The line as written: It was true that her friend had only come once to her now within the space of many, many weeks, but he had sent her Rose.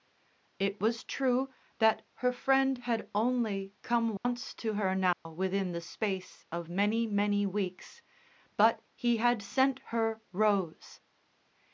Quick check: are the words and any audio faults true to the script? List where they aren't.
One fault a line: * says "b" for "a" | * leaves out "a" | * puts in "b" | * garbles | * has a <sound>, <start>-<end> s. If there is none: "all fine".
* has a dropout, 4.2-4.2 s
* has a dropout, 5.1-5.3 s